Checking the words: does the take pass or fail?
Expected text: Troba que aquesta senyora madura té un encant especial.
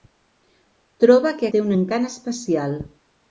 fail